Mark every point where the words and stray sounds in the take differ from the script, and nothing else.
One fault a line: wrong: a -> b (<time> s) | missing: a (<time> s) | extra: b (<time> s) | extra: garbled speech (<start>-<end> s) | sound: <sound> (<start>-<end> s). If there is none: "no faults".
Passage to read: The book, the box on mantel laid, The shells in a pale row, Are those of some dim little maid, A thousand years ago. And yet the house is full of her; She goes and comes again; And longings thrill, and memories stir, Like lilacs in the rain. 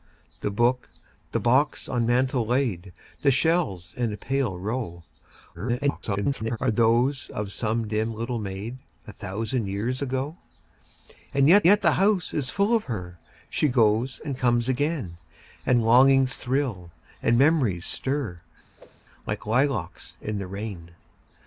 extra: garbled speech (5.5-6.6 s)
extra: yet (11.6 s)
sound: whoosh (18.8-19.0 s)